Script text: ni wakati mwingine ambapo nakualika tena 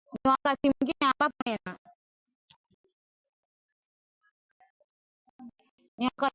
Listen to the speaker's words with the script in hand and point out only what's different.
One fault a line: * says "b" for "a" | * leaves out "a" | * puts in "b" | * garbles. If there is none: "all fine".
* leaves out "nakualika"